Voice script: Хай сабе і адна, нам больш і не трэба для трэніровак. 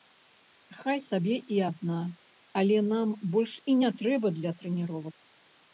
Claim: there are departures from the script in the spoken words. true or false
true